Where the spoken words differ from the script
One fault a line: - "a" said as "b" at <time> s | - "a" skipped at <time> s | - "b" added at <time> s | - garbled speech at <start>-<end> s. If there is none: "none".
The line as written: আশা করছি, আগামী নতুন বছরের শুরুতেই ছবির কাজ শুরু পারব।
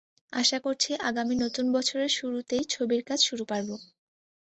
none